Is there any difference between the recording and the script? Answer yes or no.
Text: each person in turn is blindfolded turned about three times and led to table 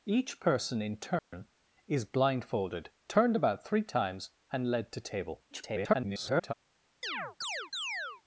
yes